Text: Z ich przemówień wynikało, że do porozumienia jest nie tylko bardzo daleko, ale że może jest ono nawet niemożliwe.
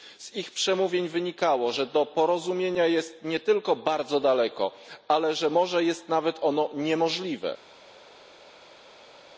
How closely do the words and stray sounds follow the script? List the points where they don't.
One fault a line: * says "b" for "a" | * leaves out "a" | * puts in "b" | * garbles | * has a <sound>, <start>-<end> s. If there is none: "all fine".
all fine